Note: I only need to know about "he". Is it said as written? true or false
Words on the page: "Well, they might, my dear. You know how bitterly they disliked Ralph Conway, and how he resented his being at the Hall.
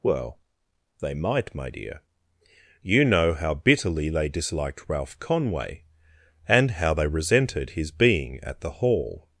false